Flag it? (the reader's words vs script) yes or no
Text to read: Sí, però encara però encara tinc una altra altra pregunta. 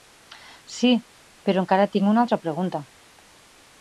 yes